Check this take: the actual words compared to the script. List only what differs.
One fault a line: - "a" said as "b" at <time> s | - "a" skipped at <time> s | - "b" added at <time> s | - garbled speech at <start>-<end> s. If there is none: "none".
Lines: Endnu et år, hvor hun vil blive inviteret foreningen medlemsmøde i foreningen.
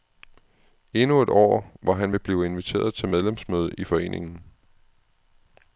- "hun" said as "han" at 1.9 s
- "foreningen" said as "til" at 2.9 s